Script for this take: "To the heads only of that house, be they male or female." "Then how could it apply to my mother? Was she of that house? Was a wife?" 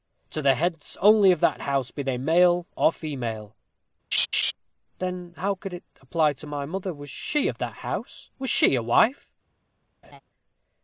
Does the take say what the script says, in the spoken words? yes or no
no